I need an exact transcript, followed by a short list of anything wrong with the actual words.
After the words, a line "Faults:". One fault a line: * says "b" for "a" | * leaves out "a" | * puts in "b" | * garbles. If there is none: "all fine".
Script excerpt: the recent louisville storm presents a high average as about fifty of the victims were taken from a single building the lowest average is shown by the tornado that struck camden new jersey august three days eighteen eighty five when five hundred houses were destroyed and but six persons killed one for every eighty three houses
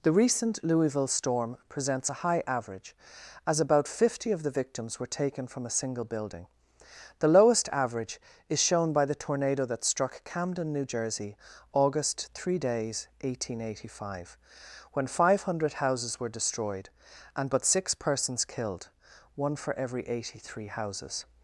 the recent louisville storm presents a high average as about fifty of the victims were taken from a single building the lowest average is shown by the tornado that struck camden new jersey august three days eighteen eighty five when five hundred houses were destroyed and but six persons killed one for every eighty three houses
Faults:
all fine